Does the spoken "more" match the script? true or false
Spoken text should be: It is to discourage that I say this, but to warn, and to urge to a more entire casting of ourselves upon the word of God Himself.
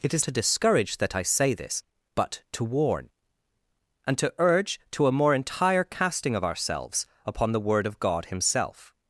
true